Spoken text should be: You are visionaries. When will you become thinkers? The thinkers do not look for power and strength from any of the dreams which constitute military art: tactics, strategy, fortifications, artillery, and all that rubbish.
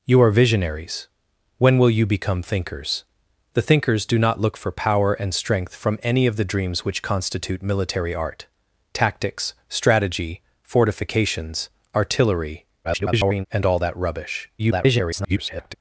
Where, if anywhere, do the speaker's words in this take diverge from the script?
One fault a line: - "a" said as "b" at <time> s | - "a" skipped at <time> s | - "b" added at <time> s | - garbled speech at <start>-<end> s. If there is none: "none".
- garbled speech at 12.8-13.5 s
- garbled speech at 14.6-15.7 s